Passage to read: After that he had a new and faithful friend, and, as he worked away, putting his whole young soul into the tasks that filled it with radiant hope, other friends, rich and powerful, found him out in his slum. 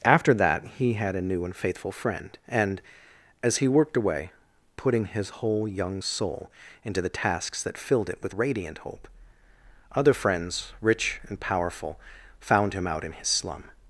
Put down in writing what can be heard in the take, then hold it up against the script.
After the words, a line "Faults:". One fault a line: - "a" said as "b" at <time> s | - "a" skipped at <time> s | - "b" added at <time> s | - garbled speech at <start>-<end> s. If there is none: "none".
After that he had a new and faithful friend, and, as he worked away, putting his whole young soul into the tasks that filled it with radiant hope, other friends, rich and powerful, found him out in his slum.
Faults:
none